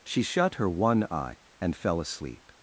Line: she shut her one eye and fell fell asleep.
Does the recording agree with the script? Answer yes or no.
no